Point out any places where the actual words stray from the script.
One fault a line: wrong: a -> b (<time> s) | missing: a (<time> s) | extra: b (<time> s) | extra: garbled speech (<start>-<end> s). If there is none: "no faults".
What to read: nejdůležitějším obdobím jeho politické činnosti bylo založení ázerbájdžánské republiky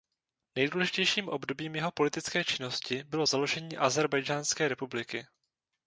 no faults